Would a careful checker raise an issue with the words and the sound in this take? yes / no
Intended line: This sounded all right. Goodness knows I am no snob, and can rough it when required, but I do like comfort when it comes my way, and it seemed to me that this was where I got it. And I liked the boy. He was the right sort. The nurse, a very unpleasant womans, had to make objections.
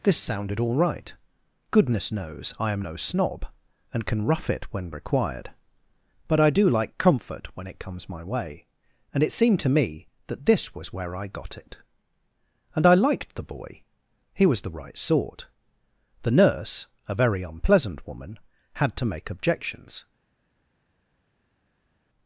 yes